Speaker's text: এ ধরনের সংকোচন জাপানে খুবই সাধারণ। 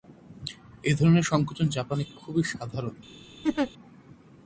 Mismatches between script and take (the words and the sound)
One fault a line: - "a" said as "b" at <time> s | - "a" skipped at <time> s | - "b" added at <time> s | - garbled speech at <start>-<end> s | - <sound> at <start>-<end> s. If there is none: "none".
- laugh at 3.4-3.7 s